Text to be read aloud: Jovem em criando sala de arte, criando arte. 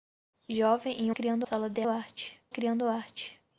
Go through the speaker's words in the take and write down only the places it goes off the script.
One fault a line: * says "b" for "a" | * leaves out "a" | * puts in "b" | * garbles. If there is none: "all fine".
all fine